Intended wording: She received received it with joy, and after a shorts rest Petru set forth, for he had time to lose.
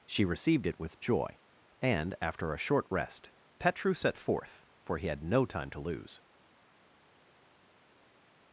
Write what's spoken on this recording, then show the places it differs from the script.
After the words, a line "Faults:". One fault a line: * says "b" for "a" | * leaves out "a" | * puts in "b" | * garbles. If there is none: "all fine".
She received it with joy, and after a short rest Petru set forth, for he had no time to lose.
Faults:
* leaves out "received"
* says "short" for "shorts"
* puts in "no"